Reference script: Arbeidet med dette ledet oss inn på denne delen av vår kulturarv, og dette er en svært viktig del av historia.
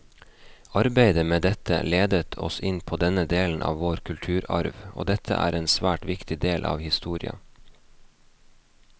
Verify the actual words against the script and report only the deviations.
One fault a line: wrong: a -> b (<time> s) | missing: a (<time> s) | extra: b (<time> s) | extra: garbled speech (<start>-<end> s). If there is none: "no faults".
no faults